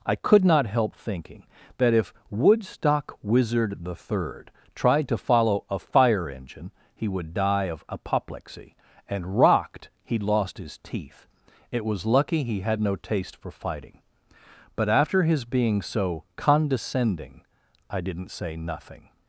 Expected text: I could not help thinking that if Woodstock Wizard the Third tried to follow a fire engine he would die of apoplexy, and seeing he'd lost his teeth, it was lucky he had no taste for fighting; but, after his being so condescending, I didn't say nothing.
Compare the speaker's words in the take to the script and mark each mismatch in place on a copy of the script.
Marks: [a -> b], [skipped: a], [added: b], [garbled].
I could not help thinking that if Woodstock Wizard the Third tried to follow a fire engine he would die of apoplexy, and [seeing -> rocked] he'd lost his teeth, it was lucky he had no taste for fighting; but, after his being so condescending, I didn't say nothing.